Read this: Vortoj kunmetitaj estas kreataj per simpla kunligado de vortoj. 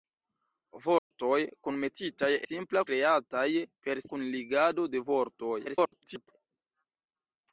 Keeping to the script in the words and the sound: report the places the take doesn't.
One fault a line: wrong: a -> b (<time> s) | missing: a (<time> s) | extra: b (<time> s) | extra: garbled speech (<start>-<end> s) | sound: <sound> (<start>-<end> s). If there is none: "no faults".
sound: dropout (1.0-1.1 s)
wrong: estas -> simpla (2.4 s)
missing: simpla (4.1 s)
extra: garbled speech (5.6-6.3 s)